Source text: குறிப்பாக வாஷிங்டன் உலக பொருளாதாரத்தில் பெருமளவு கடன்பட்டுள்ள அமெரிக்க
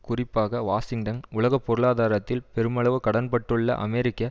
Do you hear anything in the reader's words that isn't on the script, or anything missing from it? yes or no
no